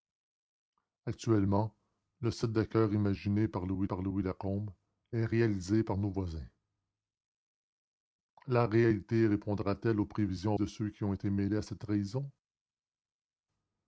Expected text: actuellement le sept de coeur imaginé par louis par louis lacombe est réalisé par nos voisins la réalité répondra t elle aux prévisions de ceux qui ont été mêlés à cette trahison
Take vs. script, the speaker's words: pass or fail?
pass